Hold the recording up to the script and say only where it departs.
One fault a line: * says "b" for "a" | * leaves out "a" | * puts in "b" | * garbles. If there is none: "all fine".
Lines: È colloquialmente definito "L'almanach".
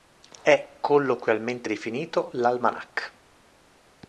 all fine